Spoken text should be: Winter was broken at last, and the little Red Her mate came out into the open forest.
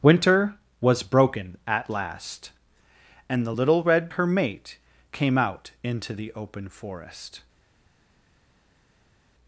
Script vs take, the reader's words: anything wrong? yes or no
no